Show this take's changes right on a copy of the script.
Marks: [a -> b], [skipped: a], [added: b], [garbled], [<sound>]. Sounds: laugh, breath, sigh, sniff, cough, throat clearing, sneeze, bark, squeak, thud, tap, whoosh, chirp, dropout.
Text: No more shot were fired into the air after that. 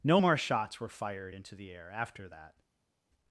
No more [shot -> shots] were fired into the air after that.